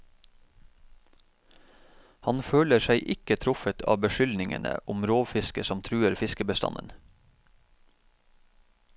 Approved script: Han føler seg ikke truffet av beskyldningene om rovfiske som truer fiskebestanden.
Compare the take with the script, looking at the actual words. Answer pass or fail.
pass